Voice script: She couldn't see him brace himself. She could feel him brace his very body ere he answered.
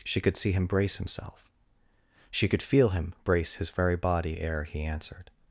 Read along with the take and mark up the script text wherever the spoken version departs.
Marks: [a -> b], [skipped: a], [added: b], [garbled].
She [couldn't -> could] see him brace himself. She could feel him brace his very body ere he answered.